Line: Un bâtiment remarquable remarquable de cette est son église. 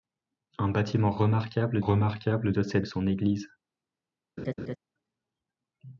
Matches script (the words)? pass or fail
pass